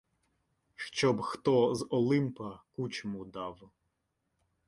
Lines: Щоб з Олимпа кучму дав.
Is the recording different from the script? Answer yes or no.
yes